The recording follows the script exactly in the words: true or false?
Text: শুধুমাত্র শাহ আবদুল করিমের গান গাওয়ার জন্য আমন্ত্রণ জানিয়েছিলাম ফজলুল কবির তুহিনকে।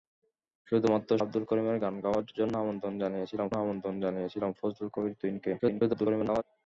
false